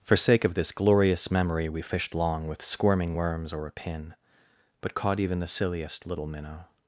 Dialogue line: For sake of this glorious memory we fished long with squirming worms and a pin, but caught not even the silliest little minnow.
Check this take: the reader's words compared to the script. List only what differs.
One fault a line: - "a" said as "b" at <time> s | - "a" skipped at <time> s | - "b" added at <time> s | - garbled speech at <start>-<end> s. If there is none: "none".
- "and" said as "or" at 3.5 s
- "not" skipped at 5.2 s